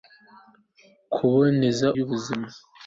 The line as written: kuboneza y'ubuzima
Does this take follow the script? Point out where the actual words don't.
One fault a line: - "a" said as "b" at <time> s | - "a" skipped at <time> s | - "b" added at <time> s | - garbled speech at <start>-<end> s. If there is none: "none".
none